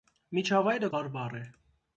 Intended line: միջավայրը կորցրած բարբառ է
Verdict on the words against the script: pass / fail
fail